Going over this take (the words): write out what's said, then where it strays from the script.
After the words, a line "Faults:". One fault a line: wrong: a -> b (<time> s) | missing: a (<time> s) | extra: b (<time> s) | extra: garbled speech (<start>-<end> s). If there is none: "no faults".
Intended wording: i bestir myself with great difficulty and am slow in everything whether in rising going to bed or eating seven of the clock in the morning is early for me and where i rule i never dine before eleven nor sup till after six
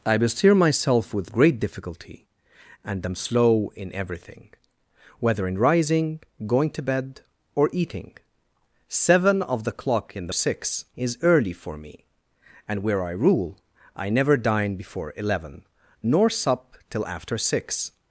i bestir myself with great difficulty and am slow in everything whether in rising going to bed or eating seven of the clock in the six is early for me and where i rule i never dine before eleven nor sup till after six
Faults:
wrong: morning -> six (10.3 s)